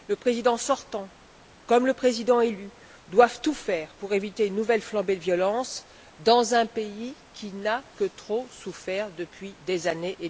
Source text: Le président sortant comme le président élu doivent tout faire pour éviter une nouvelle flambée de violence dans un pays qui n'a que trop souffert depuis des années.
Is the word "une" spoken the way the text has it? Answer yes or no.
yes